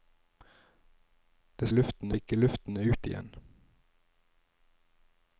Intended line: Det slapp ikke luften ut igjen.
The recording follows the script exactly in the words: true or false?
false